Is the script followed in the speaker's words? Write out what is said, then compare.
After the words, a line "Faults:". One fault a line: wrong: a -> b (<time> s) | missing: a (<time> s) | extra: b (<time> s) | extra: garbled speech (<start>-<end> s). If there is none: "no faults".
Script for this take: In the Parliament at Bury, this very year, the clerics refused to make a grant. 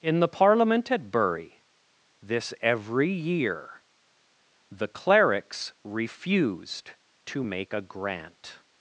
In the Parliament at Bury, this every year, the clerics refused to make a grant.
Faults:
wrong: very -> every (2.6 s)